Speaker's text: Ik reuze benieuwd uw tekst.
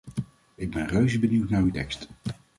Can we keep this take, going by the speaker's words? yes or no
no